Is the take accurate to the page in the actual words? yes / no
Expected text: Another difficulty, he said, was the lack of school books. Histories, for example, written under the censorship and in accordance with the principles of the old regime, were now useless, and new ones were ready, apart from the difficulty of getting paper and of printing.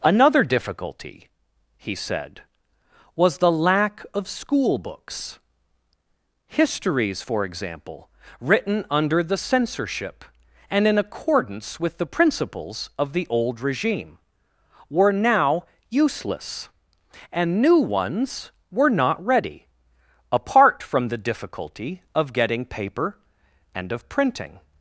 no